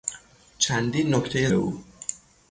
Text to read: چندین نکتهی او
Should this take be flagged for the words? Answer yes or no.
no